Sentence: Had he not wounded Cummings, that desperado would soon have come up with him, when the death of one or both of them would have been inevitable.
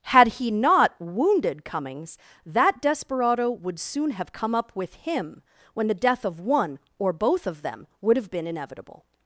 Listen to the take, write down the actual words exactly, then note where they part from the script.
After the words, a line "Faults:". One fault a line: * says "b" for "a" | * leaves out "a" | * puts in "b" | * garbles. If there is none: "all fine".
Had he not wounded Cummings, that desperado would soon have come up with him, when the death of one or both of them would have been inevitable.
Faults:
all fine